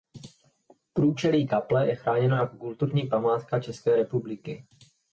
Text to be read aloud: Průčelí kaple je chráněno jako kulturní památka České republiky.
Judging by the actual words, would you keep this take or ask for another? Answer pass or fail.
pass